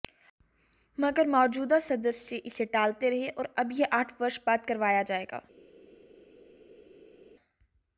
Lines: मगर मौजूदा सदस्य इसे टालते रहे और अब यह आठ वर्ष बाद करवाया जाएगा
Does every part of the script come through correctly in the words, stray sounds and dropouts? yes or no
yes